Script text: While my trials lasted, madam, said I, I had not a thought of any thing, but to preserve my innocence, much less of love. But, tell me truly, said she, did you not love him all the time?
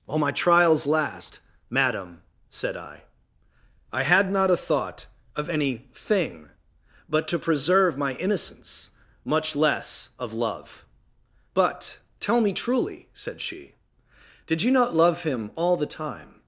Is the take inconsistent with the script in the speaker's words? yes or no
yes